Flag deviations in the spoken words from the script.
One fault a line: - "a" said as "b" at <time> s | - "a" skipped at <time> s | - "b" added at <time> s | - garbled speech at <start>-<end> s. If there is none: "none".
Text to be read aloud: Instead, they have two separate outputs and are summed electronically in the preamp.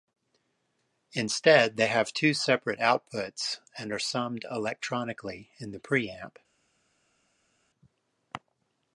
none